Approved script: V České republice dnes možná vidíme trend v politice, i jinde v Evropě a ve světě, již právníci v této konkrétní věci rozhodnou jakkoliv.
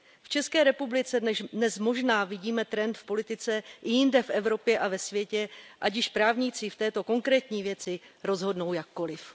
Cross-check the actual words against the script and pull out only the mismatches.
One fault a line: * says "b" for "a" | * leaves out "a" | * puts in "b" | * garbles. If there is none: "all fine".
* puts in "ať"